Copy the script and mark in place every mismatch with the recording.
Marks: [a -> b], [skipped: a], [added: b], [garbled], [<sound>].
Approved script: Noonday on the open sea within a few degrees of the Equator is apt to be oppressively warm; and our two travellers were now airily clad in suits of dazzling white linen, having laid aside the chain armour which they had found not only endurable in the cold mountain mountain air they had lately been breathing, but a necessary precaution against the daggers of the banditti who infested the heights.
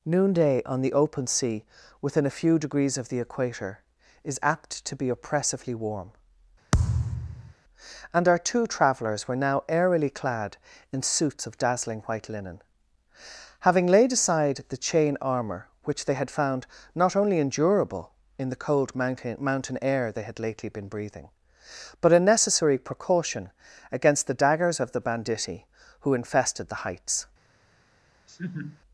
Noonday on the open sea within a few degrees of the Equator is apt to be oppressively warm; [thud] and our two travellers were now airily clad in suits of dazzling white linen, having laid aside the chain armour which they had found not only endurable in the cold mountain mountain air they had lately been breathing, but a necessary precaution against the daggers of the banditti who infested the heights. [laugh]